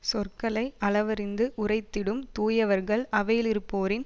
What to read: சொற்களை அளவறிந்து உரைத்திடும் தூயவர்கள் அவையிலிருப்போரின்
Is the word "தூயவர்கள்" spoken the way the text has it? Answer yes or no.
yes